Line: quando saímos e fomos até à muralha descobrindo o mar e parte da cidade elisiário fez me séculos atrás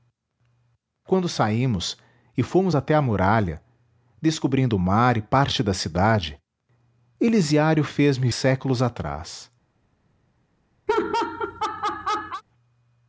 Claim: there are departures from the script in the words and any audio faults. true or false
true